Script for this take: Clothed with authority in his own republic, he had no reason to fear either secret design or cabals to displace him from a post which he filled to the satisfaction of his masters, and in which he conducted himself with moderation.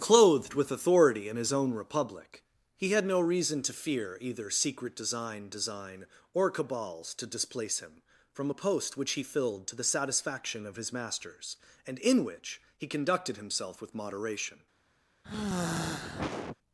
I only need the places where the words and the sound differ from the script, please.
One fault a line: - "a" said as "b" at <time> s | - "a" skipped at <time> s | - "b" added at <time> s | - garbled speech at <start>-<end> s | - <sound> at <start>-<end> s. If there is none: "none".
- "design" added at 5.5 s
- sigh at 15.2-16.6 s